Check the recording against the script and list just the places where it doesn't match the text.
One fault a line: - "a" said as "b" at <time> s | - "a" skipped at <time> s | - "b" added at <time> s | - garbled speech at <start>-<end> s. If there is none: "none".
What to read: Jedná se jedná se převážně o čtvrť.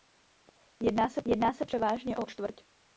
none